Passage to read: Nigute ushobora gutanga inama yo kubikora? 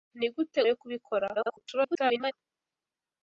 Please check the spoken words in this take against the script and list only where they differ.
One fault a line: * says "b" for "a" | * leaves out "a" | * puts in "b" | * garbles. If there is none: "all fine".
* leaves out "ushobora gutanga inama"
* garbles